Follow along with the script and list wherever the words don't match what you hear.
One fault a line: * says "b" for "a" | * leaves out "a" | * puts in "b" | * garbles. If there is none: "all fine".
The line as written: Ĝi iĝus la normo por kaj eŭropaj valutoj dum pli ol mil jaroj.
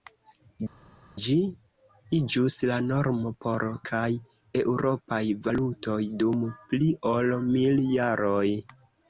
all fine